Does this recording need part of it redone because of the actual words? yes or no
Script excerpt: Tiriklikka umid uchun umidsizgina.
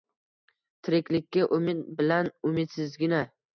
yes